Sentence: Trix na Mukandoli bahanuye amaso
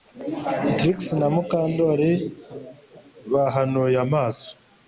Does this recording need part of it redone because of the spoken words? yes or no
no